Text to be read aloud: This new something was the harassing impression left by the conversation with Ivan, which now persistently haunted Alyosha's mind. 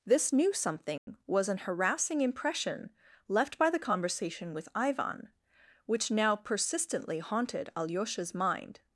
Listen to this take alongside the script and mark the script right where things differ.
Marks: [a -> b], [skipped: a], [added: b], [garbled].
This new something was [the -> an] harassing impression left by the conversation with Ivan, which now persistently haunted Alyosha's mind.